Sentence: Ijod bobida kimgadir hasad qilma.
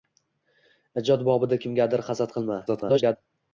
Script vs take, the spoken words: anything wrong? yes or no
yes